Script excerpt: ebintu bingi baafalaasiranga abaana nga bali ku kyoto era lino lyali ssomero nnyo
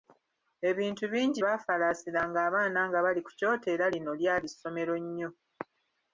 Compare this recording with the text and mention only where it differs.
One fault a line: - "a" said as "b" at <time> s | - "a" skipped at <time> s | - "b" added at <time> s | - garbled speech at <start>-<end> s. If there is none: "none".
none